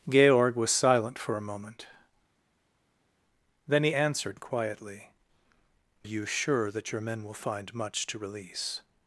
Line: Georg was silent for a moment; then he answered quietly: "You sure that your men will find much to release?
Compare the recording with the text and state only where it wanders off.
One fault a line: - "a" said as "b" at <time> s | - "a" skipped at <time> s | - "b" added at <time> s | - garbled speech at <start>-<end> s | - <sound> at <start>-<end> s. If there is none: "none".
none